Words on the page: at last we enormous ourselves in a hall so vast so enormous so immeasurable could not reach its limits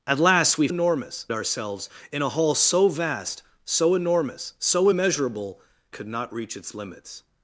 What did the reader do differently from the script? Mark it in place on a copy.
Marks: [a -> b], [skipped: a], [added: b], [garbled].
at last we enormous ourselves in a hall so vast so enormous so immeasurable could not reach its limits